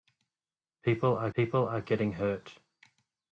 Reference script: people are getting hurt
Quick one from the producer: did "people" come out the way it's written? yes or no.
yes